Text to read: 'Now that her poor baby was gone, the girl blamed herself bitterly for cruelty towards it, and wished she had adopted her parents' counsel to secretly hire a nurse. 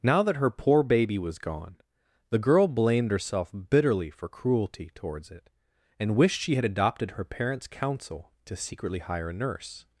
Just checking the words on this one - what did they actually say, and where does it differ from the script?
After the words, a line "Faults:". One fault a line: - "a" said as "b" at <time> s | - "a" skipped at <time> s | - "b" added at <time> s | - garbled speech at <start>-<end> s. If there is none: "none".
'Now that her poor baby was gone, the girl blamed herself bitterly for cruelty towards it, and wished she had adopted her parents' counsel to secretly hire a nurse.
Faults:
none